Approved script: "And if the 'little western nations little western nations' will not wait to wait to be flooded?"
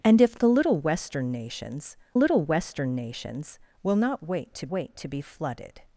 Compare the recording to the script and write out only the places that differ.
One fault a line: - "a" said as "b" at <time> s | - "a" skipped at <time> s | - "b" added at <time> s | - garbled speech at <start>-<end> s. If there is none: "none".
none